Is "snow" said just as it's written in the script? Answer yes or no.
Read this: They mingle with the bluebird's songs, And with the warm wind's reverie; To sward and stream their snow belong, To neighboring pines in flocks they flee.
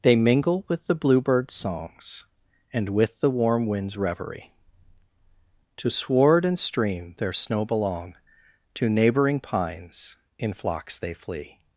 yes